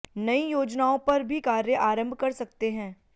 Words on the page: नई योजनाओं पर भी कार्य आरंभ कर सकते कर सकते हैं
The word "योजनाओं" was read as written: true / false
true